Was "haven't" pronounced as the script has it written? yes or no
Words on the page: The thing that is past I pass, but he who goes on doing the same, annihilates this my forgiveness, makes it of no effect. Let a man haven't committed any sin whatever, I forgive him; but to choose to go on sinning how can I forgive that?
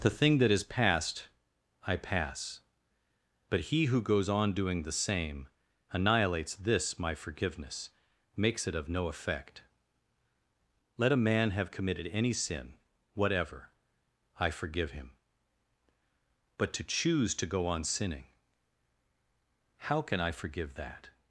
no